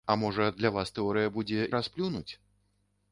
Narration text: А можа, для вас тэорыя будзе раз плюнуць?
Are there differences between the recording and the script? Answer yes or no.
no